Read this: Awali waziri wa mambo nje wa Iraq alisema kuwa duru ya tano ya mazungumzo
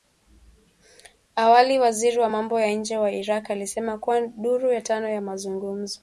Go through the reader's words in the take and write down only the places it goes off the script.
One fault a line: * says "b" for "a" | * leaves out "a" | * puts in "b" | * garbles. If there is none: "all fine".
* puts in "ya"